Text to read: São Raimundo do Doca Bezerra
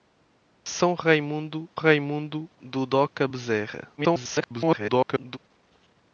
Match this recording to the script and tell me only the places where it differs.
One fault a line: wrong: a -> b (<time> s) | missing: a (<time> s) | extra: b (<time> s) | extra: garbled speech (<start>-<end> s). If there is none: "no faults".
extra: Raimundo (1.7 s)
extra: garbled speech (4.0-5.4 s)